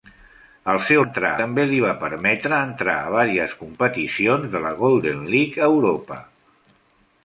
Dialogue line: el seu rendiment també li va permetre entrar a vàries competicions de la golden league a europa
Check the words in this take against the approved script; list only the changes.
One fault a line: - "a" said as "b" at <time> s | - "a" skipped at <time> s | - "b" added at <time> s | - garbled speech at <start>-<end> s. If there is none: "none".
- "rendiment" said as "entrar" at 1.0 s